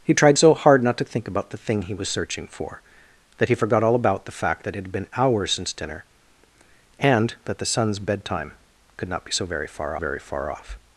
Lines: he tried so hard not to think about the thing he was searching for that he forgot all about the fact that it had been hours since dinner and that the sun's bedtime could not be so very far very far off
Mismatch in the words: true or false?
false